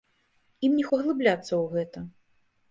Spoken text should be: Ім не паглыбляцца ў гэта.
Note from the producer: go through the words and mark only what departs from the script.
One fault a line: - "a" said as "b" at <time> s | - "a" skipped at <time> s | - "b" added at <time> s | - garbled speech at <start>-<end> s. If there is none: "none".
none